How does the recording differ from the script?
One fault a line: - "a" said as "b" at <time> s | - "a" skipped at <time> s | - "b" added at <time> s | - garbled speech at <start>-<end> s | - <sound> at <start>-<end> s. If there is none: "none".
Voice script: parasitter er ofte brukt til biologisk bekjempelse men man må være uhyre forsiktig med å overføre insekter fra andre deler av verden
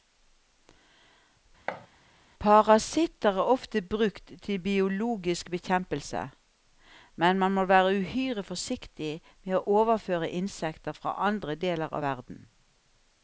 - thud at 1.7-1.9 s